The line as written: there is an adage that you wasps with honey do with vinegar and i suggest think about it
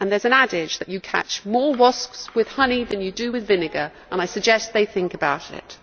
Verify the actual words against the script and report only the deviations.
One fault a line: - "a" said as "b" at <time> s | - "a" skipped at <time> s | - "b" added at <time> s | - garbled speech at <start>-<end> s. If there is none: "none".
- "catch more" added at 1.0 s
- "than you" added at 2.8 s
- "they" added at 4.7 s